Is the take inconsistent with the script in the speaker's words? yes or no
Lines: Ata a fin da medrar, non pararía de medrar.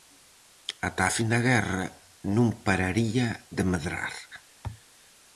yes